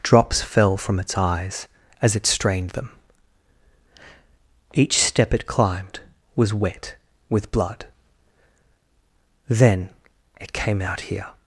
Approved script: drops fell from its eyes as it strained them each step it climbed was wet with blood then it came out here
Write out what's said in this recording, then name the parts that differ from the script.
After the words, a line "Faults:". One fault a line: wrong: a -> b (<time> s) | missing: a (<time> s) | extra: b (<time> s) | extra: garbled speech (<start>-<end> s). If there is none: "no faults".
drops fell from its eyes as it strained them each step it climbed was wet with blood then it came out here
Faults:
no faults